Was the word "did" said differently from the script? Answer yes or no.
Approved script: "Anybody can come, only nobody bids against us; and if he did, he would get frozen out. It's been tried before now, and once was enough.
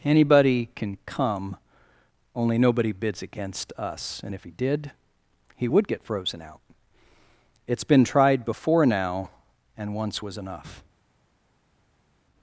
no